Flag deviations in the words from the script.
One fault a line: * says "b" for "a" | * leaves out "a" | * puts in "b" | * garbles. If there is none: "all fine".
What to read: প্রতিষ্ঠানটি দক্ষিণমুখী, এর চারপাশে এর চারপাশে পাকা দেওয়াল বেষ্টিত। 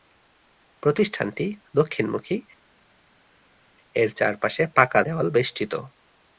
* leaves out "এর চারপাশে"